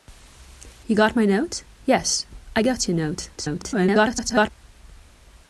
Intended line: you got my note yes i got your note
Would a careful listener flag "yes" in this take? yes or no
no